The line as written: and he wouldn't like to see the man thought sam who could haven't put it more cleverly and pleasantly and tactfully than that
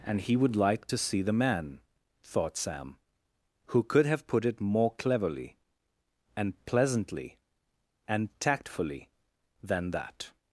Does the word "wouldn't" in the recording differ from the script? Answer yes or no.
yes